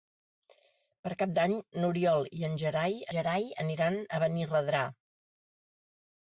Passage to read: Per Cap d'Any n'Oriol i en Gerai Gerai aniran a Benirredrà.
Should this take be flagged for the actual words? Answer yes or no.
no